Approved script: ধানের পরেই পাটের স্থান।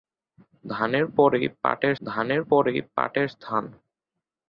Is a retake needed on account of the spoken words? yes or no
yes